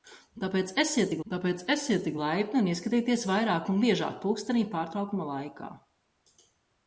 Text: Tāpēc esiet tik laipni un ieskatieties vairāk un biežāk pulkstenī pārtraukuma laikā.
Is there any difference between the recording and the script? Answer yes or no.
yes